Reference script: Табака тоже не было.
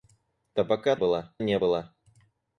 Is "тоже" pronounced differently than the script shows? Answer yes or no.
yes